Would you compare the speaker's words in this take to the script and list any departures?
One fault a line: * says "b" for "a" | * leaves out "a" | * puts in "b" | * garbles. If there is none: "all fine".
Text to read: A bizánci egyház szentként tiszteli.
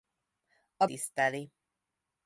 * leaves out "bizánci egyház szentként"